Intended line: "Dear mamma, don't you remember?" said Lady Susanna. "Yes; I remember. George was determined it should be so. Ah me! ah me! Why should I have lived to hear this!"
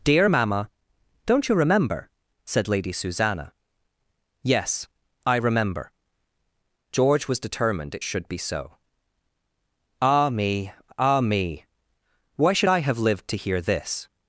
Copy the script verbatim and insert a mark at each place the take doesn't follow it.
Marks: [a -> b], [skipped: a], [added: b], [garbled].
"Dear mamma, don't you remember?" said Lady Susanna. "Yes; I remember. George was determined it should be so. Ah me! ah me! Why should I have lived to hear this!"